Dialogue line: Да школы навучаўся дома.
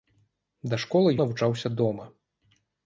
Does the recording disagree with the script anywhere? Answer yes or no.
no